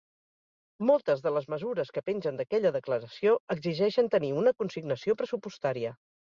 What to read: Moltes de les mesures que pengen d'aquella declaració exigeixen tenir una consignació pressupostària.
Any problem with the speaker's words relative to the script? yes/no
no